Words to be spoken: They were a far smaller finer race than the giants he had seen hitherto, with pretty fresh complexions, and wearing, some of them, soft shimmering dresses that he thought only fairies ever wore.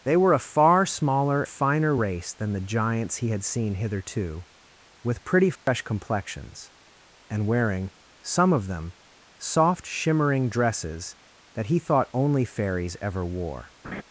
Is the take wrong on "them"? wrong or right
right